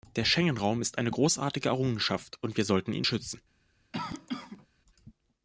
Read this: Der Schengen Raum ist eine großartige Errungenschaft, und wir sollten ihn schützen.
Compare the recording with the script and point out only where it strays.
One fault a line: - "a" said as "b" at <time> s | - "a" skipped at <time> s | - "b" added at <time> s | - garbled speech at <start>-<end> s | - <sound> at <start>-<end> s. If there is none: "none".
- cough at 3.9-4.7 s